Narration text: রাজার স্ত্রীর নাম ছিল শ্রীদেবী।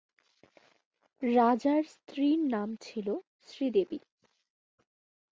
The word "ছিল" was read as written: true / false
true